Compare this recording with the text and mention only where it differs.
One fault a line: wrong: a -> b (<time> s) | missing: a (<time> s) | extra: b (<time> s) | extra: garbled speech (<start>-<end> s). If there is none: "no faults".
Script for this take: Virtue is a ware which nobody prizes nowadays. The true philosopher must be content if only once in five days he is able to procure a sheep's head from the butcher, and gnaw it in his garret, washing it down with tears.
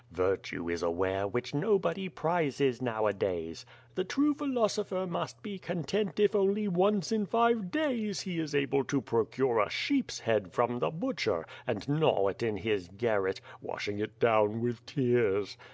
no faults